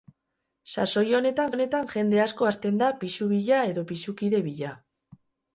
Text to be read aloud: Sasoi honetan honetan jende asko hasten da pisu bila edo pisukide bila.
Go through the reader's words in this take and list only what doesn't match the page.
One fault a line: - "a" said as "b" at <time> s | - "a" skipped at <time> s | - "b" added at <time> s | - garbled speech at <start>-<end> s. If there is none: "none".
none